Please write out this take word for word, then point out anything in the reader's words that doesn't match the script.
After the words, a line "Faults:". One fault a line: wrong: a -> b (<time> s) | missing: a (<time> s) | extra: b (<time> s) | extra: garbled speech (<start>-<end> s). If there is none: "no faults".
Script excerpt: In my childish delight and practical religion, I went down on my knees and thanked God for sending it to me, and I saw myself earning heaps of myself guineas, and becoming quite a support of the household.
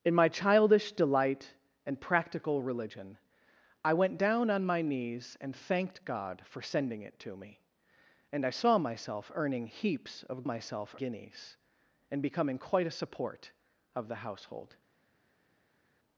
In my childish delight and practical religion, I went down on my knees and thanked God for sending it to me, and I saw myself earning heaps of myself guineas, and becoming quite a support of the household.
Faults:
no faults